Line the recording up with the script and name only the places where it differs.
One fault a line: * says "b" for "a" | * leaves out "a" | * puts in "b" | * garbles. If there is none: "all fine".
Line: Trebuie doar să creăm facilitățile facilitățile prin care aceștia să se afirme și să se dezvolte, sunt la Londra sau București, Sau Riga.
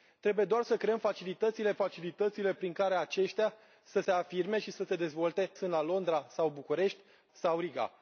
all fine